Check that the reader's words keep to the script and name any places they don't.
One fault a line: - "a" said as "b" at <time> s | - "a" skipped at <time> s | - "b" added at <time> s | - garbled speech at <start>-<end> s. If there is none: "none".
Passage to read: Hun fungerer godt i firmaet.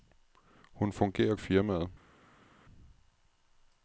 - "godt" skipped at 1.4 s